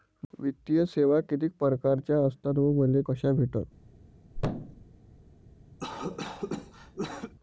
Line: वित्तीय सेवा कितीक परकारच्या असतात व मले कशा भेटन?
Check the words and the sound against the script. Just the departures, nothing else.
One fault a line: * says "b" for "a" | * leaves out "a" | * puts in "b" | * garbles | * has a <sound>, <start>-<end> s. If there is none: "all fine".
* has a thud, 4.3-4.9 s
* has a cough, 5.8-7.3 s